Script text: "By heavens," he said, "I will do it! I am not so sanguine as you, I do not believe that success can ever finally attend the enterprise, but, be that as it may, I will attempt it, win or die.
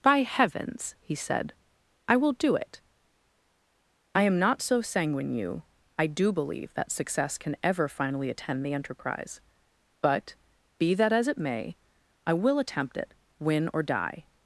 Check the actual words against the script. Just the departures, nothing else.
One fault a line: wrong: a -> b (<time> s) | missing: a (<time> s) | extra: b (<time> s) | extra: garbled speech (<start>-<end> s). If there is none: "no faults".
missing: as (5.3 s)
missing: not (6.3 s)